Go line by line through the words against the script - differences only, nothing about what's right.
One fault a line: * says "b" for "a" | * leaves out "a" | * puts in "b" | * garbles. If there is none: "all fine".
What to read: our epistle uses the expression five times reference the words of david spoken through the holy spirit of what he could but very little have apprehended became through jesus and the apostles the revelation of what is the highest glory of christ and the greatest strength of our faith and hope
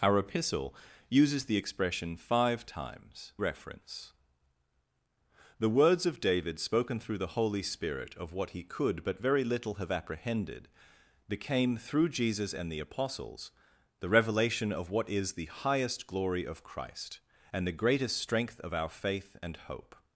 all fine